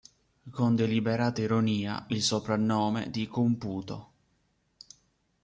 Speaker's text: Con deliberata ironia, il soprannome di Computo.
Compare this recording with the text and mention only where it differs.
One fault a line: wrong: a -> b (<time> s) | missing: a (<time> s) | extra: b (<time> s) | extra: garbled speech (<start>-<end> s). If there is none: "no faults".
no faults